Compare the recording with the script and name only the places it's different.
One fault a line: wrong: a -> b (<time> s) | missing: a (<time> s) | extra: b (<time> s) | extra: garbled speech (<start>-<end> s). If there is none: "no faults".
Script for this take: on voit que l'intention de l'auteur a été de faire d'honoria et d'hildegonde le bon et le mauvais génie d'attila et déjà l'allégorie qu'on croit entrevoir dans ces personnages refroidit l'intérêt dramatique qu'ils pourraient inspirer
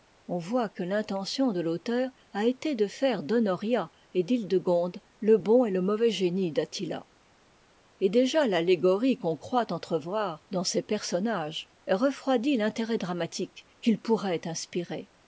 no faults